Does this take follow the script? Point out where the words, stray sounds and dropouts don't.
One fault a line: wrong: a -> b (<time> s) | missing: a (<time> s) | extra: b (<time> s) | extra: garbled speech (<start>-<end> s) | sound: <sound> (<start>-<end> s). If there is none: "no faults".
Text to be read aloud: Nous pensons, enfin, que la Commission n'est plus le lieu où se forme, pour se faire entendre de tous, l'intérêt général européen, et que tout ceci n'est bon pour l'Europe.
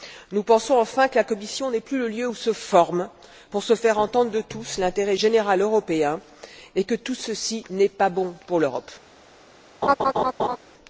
extra: pas (7.9 s)
sound: laugh (9.8-10.6 s)